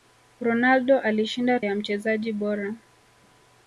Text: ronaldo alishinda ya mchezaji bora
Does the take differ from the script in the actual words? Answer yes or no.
no